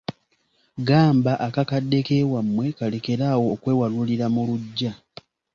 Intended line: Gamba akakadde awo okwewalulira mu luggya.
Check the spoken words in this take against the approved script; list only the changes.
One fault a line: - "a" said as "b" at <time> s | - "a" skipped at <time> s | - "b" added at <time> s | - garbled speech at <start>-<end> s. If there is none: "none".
- "k'ewammwe kalekere" added at 2.0 s